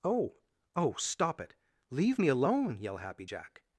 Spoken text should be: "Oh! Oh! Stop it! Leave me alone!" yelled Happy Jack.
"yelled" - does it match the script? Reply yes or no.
no